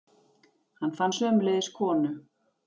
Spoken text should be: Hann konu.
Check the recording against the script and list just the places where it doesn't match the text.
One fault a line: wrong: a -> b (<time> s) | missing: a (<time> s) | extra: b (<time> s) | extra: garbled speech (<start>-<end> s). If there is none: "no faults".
extra: fann sömuleiðis (1.0 s)